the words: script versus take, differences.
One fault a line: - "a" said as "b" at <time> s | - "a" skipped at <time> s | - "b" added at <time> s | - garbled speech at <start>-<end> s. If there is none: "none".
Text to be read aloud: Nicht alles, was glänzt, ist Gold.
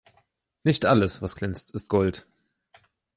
none